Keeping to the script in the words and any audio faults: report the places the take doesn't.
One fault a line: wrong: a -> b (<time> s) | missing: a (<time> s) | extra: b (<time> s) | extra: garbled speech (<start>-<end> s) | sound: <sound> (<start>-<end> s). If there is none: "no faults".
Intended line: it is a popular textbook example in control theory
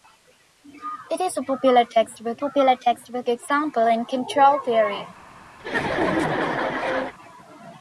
extra: popular textbook (2.4 s)
sound: laugh (5.6-7.1 s)